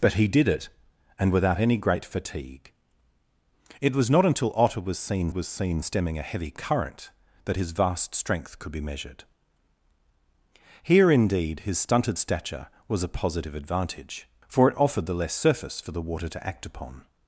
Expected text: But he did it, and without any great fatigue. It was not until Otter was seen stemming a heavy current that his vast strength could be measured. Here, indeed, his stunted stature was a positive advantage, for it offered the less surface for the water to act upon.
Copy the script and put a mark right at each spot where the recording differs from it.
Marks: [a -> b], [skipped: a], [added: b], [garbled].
But he did it, and without any great fatigue. It was not until Otter was seen [added: was seen] stemming a heavy current that his vast strength could be measured. Here, indeed, his stunted stature was a positive advantage, for it offered the less surface for the water to act upon.